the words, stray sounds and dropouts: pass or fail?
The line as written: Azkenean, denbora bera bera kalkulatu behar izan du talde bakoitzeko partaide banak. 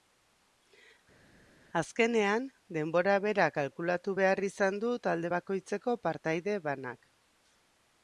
fail